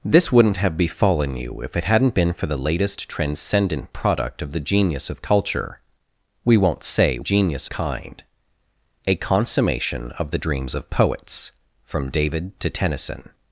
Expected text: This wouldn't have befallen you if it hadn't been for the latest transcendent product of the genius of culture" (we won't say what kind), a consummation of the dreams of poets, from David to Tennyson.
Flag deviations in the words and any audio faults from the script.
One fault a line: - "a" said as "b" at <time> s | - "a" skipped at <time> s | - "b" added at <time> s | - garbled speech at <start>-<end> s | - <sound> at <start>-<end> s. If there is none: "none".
- "what" said as "genius" at 7.2 s